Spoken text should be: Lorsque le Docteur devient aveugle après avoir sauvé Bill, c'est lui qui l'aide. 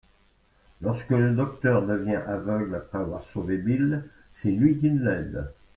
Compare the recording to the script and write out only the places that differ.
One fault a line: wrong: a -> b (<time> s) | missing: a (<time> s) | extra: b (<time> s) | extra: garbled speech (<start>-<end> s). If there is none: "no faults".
no faults